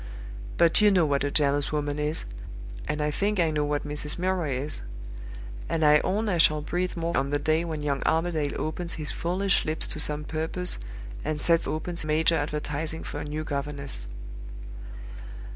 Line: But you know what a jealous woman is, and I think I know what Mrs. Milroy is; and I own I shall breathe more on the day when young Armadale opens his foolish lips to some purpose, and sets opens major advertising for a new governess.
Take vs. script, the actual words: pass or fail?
pass